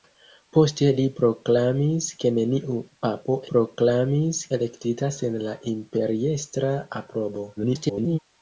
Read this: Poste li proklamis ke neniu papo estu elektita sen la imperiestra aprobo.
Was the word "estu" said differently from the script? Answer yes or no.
yes